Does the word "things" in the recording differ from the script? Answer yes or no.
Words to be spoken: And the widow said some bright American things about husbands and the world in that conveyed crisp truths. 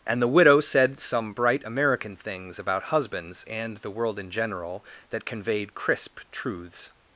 no